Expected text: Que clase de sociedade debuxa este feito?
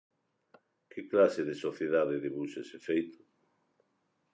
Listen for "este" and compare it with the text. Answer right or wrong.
wrong